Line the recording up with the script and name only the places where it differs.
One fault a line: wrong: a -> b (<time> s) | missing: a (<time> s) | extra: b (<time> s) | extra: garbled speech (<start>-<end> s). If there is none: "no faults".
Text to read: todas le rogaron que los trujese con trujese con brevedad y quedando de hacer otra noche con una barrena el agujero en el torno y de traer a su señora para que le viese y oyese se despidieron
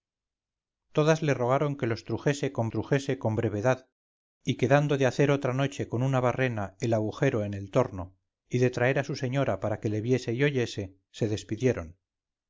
no faults